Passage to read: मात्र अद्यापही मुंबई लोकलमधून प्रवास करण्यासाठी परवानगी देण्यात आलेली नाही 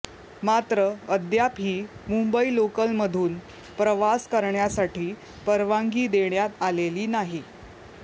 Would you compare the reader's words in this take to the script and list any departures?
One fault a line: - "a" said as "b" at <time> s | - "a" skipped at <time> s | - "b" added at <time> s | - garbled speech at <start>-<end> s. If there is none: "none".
none